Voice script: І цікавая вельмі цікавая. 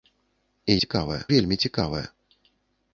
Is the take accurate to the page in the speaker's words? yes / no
yes